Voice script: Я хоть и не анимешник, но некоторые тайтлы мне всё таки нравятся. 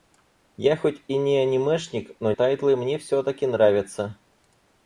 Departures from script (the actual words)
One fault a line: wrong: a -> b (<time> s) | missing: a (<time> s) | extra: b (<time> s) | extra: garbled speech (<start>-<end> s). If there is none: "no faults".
missing: некоторые (2.3 s)